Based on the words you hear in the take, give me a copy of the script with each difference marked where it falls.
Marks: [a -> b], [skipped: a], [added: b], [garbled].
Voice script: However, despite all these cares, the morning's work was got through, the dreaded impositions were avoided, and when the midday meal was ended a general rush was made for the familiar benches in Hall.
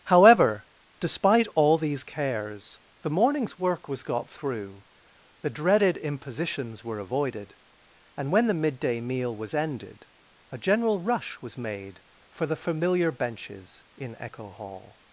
However, despite all these cares, the morning's work was got through, the dreaded impositions were avoided, and when the midday meal was ended a general rush was made for the familiar benches in [added: echo] Hall.